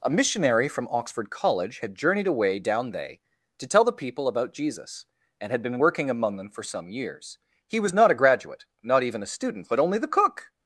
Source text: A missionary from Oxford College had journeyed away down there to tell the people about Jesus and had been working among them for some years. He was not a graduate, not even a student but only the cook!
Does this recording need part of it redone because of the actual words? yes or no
yes